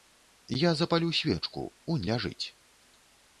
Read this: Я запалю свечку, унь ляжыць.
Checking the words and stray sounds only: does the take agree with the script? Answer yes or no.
yes